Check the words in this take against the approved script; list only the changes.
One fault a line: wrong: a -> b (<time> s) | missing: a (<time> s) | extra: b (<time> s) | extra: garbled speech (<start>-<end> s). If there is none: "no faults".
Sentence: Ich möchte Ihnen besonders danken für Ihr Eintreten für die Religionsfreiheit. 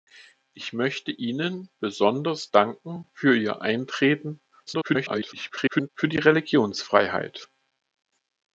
extra: garbled speech (4.7-5.9 s)